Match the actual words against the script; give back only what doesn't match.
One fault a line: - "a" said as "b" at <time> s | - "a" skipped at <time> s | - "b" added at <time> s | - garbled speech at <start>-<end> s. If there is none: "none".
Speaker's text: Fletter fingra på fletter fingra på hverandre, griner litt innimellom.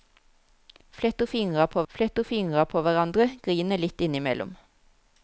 none